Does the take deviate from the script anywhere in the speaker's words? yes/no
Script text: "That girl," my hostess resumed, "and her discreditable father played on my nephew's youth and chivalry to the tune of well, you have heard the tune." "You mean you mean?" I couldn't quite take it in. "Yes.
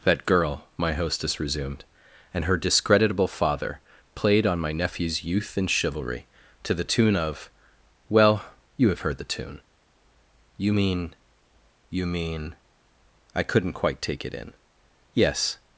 no